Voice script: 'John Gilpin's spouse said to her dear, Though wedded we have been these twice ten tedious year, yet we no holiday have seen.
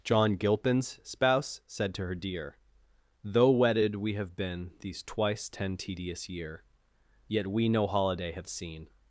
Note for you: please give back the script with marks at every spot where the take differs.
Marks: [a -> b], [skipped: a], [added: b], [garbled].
'John Gilpin's spouse said to her dear, Though wedded we have been these twice ten tedious year, yet we no holiday have seen.